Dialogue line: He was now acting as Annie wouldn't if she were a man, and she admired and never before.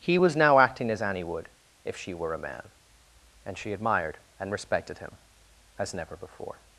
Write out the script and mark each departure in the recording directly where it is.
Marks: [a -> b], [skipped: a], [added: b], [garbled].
He was now acting as Annie [wouldn't -> would] if she were a man, and she admired and [added: respected him as] never before.